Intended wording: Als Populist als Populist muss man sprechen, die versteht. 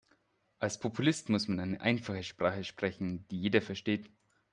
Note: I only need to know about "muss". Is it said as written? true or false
false